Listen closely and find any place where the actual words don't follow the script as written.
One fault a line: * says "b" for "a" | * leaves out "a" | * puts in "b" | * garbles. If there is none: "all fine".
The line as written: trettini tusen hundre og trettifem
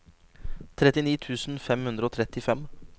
* puts in "fem"